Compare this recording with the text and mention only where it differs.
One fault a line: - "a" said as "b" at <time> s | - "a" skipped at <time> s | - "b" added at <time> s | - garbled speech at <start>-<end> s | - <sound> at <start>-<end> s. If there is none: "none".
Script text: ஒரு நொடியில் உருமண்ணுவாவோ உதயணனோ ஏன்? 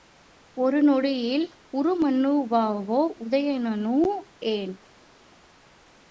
none